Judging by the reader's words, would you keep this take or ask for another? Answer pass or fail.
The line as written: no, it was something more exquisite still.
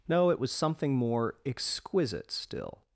pass